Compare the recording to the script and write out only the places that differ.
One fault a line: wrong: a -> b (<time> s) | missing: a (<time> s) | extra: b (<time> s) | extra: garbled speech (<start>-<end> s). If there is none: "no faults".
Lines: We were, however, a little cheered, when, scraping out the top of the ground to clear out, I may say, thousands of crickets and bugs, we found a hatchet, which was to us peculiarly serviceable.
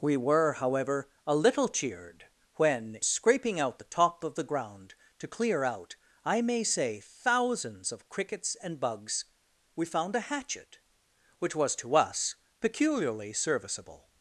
no faults